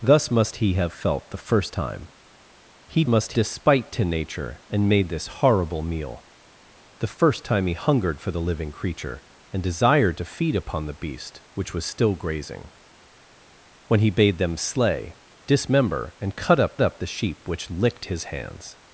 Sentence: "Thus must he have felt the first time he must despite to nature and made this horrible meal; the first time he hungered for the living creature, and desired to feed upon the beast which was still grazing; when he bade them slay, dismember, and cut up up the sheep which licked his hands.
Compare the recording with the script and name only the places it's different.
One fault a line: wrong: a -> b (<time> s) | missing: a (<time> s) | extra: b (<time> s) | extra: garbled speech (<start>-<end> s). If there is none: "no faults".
no faults